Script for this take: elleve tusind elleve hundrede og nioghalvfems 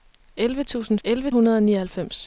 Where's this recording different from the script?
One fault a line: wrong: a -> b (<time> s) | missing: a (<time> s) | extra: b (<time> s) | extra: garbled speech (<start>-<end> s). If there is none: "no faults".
no faults